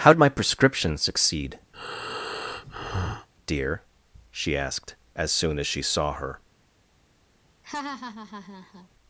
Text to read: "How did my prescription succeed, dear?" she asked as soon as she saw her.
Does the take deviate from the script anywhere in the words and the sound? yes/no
yes